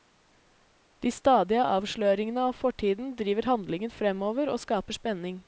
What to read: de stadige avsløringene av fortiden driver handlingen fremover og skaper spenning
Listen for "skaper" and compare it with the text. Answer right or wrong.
right